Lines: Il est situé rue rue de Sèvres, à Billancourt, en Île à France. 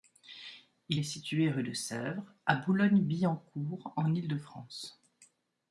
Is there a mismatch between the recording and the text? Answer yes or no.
yes